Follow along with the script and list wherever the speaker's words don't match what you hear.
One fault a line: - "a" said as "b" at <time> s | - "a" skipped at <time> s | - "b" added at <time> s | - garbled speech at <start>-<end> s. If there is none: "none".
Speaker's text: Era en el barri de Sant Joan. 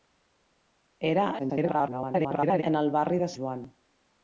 - garbled speech at 1.4-2.6 s
- "Sant" skipped at 3.3 s